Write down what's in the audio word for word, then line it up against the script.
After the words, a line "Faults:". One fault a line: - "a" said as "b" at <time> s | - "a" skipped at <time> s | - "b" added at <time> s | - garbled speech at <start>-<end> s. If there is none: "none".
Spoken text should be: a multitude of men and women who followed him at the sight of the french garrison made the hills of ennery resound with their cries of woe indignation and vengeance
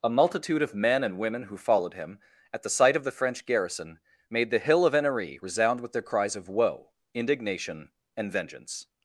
a multitude of men and women who followed him at the sight of the french garrison made the hill of ennery resound with their cries of woe indignation and vengeance
Faults:
- "hills" said as "hill" at 4.6 s